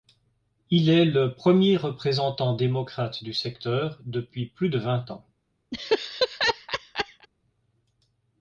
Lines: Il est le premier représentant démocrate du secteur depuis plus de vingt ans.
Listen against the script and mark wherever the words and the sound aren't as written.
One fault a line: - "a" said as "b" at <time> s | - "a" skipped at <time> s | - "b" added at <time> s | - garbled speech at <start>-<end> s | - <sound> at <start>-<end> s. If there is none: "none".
- laugh at 5.7-7.3 s